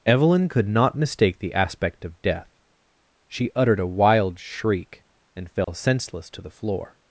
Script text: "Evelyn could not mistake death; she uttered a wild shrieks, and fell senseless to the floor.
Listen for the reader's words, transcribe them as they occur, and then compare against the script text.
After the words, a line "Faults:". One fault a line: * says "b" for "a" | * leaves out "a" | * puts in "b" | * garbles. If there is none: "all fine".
"Evelyn could not mistake the aspect of death; she uttered a wild shriek, and fell senseless to the floor.
Faults:
* puts in "the aspect of"
* says "shriek" for "shrieks"